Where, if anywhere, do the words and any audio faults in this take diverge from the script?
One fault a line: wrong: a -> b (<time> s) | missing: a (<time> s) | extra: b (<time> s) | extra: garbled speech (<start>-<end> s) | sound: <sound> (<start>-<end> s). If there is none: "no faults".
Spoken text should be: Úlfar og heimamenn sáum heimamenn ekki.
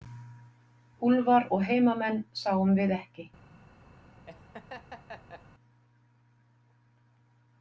wrong: heimamenn -> við (2.8 s)
sound: laugh (4.3-5.4 s)